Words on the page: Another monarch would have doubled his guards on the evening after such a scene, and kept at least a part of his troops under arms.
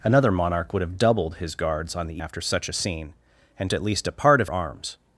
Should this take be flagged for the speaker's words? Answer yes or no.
yes